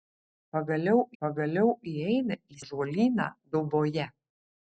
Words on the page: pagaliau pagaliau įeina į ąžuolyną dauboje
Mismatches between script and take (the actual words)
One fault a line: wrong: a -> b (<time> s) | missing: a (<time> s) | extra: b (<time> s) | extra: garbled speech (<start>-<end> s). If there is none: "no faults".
no faults